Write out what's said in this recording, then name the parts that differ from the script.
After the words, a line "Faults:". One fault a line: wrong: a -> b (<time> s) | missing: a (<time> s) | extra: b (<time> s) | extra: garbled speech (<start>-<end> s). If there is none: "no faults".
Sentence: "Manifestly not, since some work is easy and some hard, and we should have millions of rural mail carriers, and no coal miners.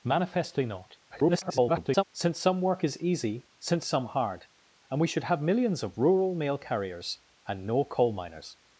"Manifestly not, [garbled] since some work is easy since some hard, and we should have millions of rural mail carriers, and no coal miners.
Faults:
extra: garbled speech (1.1-2.0 s)
wrong: and -> since (3.6 s)